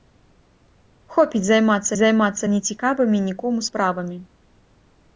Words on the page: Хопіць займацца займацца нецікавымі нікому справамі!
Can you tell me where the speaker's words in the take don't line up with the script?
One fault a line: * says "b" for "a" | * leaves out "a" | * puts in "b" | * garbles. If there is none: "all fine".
all fine